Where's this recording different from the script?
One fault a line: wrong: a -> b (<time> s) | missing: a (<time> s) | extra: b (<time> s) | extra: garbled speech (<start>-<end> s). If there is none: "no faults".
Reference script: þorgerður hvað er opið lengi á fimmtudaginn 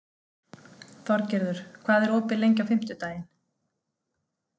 no faults